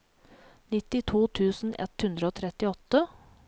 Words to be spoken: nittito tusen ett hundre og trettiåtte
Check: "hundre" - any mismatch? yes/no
no